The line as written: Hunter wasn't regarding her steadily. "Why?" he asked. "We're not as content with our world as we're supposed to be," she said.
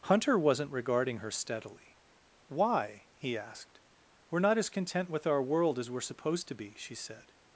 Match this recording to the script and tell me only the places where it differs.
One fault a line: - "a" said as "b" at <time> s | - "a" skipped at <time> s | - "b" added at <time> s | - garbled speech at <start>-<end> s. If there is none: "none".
none